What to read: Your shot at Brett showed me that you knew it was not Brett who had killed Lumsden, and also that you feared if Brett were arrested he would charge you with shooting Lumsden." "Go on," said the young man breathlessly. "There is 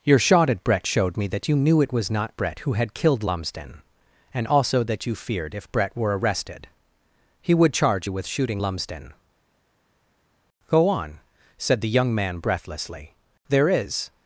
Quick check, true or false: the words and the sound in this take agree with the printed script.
true